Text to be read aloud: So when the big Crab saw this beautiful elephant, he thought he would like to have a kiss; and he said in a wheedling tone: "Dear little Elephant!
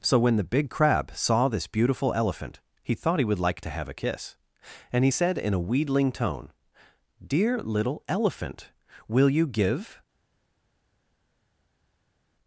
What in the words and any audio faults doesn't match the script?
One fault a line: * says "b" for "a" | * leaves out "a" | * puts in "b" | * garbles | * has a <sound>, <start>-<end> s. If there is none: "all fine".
* puts in "Will you give"